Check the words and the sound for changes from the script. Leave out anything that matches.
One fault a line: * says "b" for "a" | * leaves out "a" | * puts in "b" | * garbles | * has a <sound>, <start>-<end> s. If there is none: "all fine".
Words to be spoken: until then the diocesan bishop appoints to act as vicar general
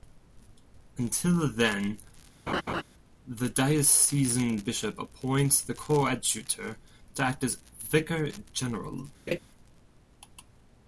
* has a laugh, 2.5-2.8 s
* puts in "the coadjutor"
* has a laugh, 9.3-9.4 s